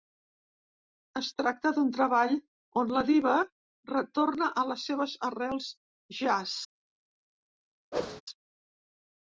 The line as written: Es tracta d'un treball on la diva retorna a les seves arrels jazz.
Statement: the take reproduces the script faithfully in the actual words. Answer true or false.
true